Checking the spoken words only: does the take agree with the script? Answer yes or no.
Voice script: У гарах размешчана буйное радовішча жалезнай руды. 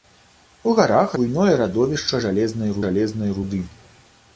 no